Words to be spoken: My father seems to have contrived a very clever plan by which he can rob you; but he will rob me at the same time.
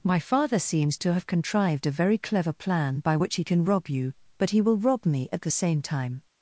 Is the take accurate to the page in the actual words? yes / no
yes